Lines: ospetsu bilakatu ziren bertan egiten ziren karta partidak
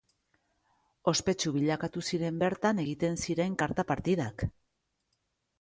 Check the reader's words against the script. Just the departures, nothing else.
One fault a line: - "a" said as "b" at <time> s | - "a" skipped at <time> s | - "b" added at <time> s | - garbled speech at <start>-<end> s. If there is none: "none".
none